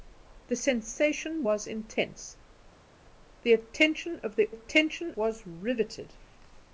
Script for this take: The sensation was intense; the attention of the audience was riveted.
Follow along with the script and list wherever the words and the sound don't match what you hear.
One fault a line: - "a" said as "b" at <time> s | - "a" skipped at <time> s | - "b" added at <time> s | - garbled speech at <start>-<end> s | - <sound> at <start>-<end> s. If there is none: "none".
- "audience" said as "attention" at 4.5 s